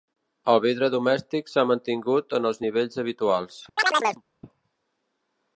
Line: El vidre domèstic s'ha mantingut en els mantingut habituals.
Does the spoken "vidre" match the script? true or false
true